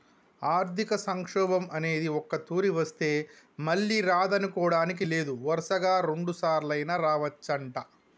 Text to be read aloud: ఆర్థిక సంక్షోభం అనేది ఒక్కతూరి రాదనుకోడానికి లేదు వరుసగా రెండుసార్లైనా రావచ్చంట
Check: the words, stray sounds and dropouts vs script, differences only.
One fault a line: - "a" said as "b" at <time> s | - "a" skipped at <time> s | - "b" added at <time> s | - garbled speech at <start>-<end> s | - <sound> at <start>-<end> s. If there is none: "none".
- "వస్తే మళ్ళీ" added at 2.7 s